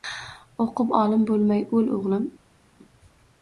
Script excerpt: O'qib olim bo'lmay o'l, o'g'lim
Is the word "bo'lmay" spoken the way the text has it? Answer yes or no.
yes